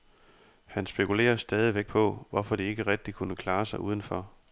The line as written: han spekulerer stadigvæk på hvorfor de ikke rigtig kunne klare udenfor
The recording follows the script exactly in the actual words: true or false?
false